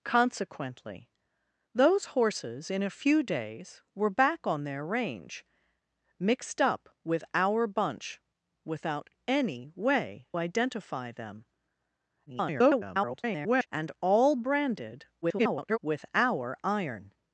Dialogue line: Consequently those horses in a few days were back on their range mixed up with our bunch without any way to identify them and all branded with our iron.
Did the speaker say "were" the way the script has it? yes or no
yes